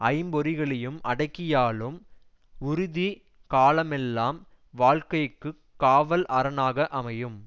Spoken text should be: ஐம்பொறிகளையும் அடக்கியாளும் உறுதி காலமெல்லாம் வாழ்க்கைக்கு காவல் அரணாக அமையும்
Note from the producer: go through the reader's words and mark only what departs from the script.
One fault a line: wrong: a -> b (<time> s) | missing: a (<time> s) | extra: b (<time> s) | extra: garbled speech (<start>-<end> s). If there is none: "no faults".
no faults